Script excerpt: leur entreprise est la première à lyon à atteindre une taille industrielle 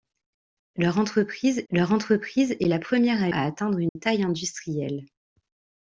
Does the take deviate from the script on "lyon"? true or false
true